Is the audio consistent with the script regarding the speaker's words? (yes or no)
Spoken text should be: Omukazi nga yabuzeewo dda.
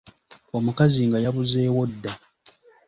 yes